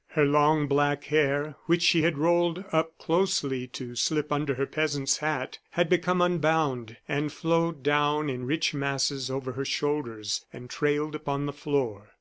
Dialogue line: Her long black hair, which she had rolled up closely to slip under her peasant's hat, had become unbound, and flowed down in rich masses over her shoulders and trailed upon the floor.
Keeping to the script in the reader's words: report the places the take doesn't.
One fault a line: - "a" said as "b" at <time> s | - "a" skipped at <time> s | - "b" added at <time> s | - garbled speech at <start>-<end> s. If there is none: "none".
none